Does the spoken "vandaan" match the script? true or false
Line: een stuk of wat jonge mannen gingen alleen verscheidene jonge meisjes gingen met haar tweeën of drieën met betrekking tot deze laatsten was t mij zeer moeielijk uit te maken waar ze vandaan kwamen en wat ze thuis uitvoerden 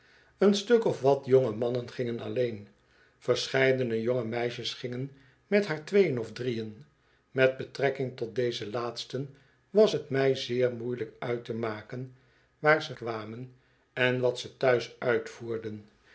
false